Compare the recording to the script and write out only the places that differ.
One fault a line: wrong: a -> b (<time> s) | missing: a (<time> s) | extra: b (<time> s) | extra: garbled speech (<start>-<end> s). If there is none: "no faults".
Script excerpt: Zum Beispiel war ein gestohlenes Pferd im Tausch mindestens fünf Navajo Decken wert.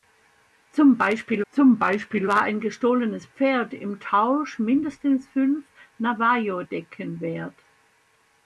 extra: zum Beispiel (1.5 s)